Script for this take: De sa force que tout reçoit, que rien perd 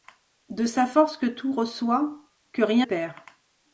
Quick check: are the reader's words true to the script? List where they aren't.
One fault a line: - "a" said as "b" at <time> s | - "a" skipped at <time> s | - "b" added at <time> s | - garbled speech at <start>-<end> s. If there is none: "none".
none